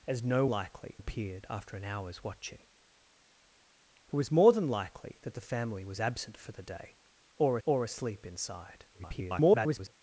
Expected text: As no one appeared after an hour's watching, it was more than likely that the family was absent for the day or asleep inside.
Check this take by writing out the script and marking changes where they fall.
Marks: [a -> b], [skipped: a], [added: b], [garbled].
As no [one -> likely] appeared after an hour's watching, it was more than likely that the family was absent for the day or [added: or] asleep inside. [garbled]